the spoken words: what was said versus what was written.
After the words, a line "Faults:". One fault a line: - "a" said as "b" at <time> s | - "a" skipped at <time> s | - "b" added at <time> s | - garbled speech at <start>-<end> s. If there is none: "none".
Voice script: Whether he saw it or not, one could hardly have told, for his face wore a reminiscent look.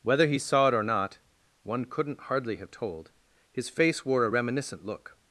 Whether he saw it or not, one couldn't hardly have told, his face wore a reminiscent look.
Faults:
- "could" said as "couldn't" at 1.9 s
- "for" skipped at 3.1 s